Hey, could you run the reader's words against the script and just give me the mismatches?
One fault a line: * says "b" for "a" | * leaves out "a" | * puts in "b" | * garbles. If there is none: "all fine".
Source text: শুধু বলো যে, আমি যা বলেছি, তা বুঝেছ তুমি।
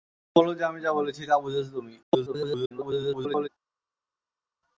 * garbles